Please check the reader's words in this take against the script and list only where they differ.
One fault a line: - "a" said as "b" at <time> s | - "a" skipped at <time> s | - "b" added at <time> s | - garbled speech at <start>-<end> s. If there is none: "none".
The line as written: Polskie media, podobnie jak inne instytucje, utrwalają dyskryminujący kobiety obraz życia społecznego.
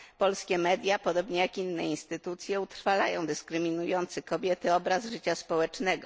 none